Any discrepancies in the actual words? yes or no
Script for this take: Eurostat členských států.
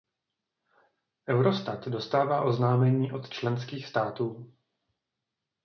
yes